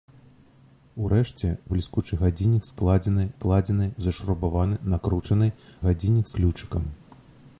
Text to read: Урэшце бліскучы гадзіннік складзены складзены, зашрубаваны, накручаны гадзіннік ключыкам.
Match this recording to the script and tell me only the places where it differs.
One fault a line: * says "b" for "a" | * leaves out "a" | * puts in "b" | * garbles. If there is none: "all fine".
all fine